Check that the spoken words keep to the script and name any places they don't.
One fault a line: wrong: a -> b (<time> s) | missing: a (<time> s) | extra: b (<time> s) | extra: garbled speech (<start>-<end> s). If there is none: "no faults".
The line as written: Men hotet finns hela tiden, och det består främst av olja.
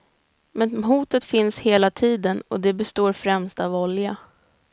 no faults